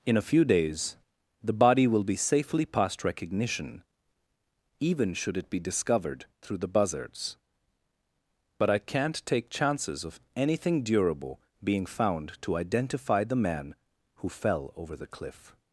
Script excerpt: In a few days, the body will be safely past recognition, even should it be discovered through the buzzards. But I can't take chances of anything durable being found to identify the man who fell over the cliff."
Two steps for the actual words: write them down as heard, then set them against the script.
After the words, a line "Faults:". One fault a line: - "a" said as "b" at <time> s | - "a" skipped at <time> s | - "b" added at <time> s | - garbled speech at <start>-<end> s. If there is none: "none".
In a few days, the body will be safely past recognition, even should it be discovered through the buzzards. But I can't take chances of anything durable being found to identify the man who fell over the cliff."
Faults:
none